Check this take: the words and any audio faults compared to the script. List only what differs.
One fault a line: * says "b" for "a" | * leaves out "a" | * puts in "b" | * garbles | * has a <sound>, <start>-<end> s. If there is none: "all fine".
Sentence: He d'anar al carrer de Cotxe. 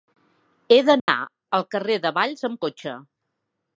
* has a dropout, 1.0-1.1 s
* puts in "Valls amb"